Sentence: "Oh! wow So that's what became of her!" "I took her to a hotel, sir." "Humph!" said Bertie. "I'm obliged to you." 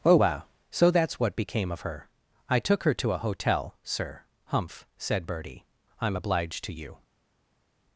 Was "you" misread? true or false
false